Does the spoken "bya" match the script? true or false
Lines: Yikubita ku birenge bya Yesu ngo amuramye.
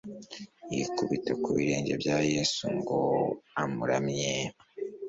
true